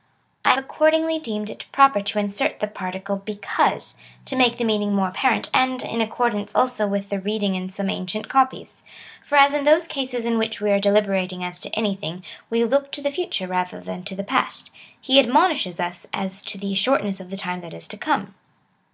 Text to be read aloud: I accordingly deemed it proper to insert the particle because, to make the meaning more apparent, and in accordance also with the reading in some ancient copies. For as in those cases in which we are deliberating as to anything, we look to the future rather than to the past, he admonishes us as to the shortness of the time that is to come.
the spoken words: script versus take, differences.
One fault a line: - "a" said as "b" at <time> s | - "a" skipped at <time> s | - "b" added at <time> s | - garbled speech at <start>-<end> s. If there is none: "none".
none